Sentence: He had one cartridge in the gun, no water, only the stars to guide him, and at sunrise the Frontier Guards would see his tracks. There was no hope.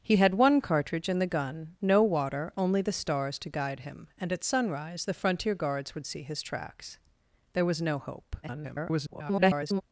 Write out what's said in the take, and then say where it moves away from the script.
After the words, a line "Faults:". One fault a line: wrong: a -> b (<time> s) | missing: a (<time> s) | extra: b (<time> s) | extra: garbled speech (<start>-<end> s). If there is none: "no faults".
He had one cartridge in the gun, no water, only the stars to guide him, and at sunrise the Frontier Guards would see his tracks. There was no hope. [garbled]
Faults:
extra: garbled speech (8.4-9.8 s)